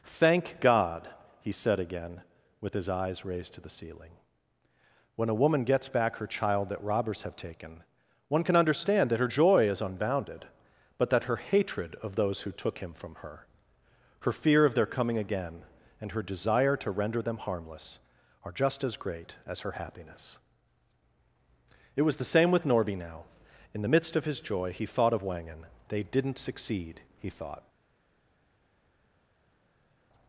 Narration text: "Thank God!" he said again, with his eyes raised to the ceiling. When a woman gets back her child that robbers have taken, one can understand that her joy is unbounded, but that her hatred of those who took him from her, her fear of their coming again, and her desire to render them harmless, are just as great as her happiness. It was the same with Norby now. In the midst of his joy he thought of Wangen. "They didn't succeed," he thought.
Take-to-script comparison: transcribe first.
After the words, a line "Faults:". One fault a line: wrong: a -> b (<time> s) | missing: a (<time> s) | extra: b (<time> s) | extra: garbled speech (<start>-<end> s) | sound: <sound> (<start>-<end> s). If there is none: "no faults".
"Thank God!" he said again, with his eyes raised to the ceiling. When a woman gets back her child that robbers have taken, one can understand that her joy is unbounded, but that her hatred of those who took him from her, her fear of their coming again, and her desire to render them harmless, are just as great as her happiness. It was the same with Norby now. In the midst of his joy he thought of Wangen. "They didn't succeed," he thought.
Faults:
no faults